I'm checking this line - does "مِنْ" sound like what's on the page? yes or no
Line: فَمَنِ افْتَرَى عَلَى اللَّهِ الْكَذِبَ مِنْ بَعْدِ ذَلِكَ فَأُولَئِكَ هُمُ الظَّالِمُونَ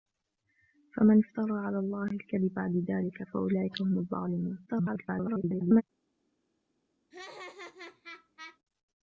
no